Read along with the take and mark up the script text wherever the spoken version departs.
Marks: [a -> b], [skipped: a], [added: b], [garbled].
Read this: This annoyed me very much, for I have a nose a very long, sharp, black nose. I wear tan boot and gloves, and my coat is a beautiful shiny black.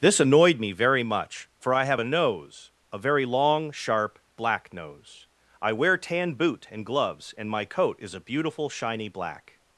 This annoyed me very much, for I have a nose a very long, sharp, black nose. I wear tan boot and gloves, and my coat is a beautiful shiny black.